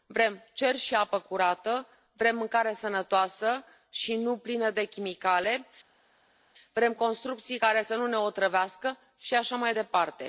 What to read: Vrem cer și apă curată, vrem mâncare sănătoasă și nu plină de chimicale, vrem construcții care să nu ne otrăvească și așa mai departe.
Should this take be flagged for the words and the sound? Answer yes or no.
no